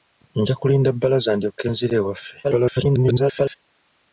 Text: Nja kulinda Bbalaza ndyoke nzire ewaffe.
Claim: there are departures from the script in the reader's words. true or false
true